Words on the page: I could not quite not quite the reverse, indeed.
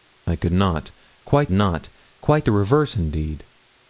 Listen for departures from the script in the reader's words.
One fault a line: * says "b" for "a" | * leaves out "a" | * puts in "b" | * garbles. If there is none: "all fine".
all fine